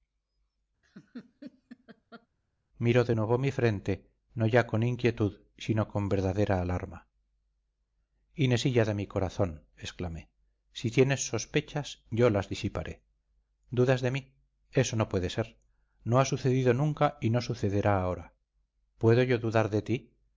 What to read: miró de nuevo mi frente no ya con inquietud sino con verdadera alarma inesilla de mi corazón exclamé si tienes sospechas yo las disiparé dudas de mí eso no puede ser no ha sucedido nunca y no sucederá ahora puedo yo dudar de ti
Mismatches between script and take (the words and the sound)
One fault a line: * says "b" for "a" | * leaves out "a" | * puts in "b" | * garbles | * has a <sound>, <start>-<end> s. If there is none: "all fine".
* has a laugh, 0.8-2.3 s